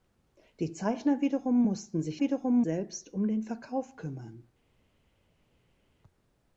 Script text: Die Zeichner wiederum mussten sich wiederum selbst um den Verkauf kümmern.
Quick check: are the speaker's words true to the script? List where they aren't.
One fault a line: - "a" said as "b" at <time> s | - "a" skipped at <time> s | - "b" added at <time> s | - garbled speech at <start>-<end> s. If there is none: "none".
none